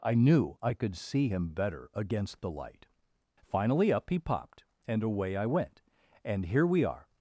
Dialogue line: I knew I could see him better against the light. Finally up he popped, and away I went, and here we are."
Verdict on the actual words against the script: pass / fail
pass